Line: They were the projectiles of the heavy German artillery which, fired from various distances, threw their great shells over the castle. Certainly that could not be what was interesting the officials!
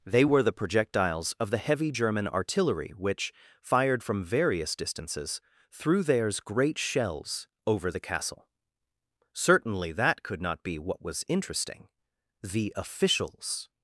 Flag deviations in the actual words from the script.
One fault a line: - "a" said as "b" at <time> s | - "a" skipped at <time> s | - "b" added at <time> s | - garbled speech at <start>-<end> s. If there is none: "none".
- "their" said as "theirs" at 6.0 s